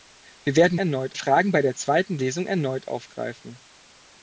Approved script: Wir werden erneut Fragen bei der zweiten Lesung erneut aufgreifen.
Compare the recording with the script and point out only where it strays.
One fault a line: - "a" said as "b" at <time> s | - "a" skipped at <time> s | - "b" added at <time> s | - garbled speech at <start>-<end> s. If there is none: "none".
none